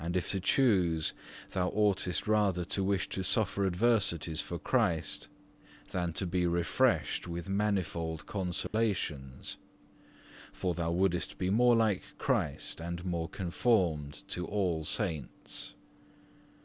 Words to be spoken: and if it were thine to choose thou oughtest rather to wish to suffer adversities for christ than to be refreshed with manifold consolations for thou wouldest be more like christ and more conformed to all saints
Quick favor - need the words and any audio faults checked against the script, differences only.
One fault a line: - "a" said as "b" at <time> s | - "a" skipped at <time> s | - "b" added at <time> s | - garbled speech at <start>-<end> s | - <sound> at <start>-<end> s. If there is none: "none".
- "it were thine" skipped at 0.3 s
- dropout at 8.7-8.7 s